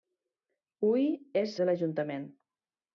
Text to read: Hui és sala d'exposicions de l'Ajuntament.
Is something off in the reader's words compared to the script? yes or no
yes